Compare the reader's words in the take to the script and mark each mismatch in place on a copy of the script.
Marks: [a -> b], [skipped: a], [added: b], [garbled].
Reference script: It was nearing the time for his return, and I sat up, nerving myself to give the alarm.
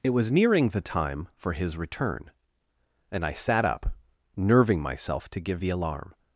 It was nearing the time for his return, and I sat up, nerving myself to give the alarm.